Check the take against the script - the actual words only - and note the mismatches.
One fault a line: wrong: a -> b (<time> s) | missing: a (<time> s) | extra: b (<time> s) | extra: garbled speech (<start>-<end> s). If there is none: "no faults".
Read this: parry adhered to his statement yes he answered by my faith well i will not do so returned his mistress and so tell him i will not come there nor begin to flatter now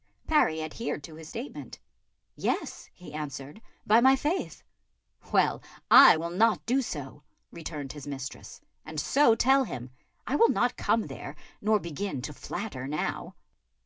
no faults